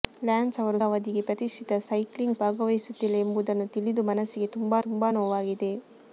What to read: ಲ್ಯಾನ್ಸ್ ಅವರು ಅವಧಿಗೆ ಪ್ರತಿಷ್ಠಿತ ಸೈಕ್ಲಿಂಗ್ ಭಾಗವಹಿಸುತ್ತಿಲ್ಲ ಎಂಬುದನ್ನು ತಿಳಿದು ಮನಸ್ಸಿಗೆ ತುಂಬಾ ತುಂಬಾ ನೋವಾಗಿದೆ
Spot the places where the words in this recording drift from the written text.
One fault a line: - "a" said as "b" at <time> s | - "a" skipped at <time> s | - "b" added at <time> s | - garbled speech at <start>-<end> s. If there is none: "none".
none